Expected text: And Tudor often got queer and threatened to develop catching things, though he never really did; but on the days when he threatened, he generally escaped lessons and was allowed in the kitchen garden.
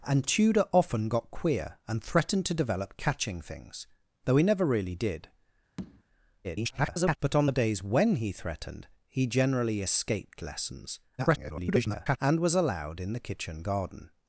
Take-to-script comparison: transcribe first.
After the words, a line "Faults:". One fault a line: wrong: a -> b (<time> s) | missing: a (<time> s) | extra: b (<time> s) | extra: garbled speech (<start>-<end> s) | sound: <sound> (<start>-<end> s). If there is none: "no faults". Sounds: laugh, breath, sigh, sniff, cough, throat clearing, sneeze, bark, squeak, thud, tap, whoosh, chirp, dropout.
And Tudor often got queer and threatened to develop catching things, though he never really did; [garbled] but on the days when he threatened, he generally escaped lessons [garbled] and was allowed in the kitchen garden.
Faults:
sound: tap (5.8-6.0 s)
extra: garbled speech (6.4-7.2 s)
extra: garbled speech (11.2-12.2 s)